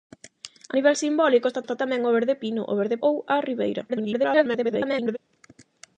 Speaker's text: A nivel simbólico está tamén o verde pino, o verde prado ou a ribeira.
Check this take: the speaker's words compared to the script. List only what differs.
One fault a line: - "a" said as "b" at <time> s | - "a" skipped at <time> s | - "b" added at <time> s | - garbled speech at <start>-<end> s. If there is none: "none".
- "está" added at 1.6 s
- "prado" skipped at 3.0 s
- garbled speech at 3.9-5.2 s